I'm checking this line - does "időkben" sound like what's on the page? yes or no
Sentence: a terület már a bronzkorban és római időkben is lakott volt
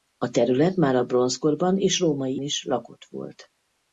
no